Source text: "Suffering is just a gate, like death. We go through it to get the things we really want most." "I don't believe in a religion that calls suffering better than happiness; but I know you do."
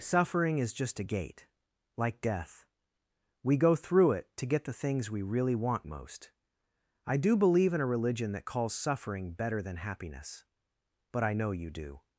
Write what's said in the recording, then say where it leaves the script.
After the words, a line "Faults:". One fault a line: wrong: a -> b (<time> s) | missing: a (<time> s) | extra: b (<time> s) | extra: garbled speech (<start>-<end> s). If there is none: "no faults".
"Suffering is just a gate, like death. We go through it to get the things we really want most." "I do believe in a religion that calls suffering better than happiness; but I know you do."
Faults:
wrong: don't -> do (7.2 s)